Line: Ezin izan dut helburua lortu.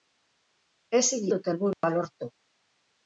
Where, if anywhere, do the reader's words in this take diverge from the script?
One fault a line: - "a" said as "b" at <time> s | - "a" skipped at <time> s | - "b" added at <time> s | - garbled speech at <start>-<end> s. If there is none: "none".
- "izan" skipped at 1.3 s